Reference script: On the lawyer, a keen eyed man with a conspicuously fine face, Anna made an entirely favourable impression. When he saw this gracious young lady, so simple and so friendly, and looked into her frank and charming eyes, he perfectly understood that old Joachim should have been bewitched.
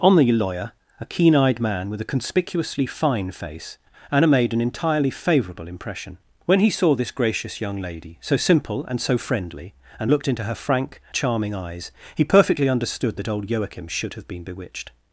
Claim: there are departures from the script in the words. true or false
true